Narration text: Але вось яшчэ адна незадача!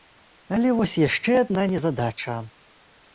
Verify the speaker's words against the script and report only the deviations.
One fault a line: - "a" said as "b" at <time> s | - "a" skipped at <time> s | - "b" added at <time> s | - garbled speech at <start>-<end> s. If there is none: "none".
none